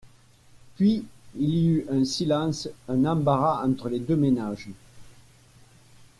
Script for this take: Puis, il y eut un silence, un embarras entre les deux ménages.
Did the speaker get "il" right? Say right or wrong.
right